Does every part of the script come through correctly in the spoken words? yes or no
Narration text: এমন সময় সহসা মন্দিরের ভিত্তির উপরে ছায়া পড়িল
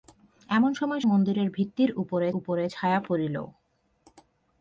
no